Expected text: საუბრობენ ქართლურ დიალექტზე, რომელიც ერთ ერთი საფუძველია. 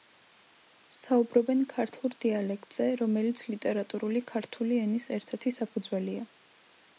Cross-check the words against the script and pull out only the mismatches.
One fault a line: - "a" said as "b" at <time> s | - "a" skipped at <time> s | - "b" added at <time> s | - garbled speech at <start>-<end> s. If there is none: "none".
- "ლიტერატურული ქართული ენის" added at 3.5 s